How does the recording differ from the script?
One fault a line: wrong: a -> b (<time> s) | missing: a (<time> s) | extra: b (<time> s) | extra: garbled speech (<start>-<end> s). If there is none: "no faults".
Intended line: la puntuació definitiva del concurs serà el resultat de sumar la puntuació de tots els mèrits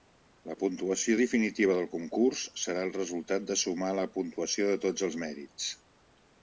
no faults